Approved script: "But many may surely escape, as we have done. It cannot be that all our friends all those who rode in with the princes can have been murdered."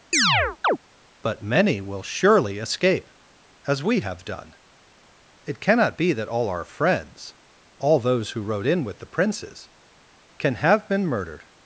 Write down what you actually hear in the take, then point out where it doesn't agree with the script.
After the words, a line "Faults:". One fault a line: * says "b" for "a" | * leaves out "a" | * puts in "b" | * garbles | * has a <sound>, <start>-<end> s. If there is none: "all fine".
"But many will surely escape, as we have done. It cannot be that all our friends all those who rode in with the princes can have been murdered."
Faults:
* has a chirp, 0.1-0.8 s
* says "will" for "may"